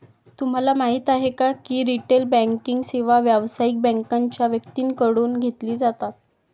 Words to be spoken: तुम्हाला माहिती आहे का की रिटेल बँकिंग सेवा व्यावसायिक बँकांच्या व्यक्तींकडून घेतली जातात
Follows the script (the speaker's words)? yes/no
yes